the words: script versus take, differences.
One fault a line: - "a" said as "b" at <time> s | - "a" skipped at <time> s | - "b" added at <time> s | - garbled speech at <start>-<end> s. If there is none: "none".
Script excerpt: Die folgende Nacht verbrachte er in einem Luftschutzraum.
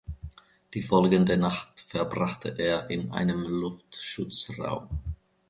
none